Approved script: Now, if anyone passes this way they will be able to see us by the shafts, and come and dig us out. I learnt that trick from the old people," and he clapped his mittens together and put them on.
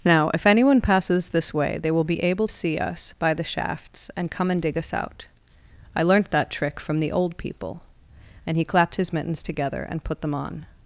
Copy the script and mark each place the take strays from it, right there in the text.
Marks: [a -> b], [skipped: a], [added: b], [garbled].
Now, if anyone passes this way they will be able [skipped: to] see us by the shafts, and come and dig us out. I learnt that trick from the old people," and he clapped his mittens together and put them on.